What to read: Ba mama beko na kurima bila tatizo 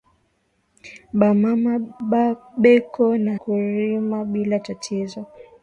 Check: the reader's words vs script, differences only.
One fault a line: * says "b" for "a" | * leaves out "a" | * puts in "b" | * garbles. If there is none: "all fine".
all fine